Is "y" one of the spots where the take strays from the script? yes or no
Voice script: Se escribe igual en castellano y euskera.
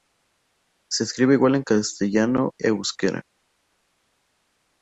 yes